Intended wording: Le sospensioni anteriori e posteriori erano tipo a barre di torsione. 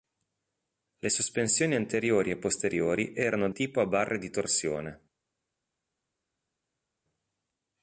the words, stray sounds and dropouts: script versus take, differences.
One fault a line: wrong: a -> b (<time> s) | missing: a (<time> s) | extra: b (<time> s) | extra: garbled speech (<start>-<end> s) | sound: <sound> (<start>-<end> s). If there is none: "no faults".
no faults